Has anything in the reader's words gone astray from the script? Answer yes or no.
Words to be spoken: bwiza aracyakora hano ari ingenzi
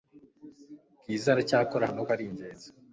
no